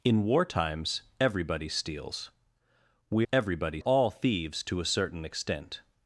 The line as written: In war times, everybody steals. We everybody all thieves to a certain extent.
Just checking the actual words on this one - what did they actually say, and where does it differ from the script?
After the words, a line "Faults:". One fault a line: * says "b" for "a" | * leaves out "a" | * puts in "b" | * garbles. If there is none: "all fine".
In war times, everybody steals. We everybody all thieves to a certain extent.
Faults:
all fine